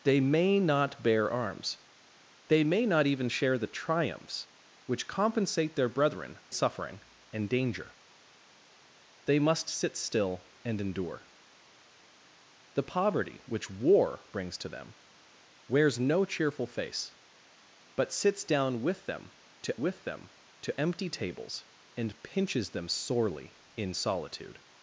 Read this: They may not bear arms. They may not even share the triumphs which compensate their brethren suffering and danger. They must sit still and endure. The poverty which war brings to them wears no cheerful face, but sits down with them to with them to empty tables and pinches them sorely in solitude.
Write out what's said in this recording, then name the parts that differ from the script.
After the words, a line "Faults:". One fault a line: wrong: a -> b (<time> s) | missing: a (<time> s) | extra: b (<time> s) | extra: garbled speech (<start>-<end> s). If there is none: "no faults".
They may not bear arms. They may not even share the triumphs which compensate their brethren suffering and danger. They must sit still and endure. The poverty which war brings to them wears no cheerful face, but sits down with them to with them to empty tables and pinches them sorely in solitude.
Faults:
no faults